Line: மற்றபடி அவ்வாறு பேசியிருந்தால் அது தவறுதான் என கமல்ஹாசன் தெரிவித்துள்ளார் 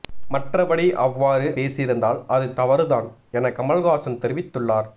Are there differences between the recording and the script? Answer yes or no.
no